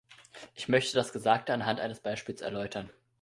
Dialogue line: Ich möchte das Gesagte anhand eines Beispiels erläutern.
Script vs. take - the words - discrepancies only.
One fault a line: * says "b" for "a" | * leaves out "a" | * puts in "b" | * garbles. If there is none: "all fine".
all fine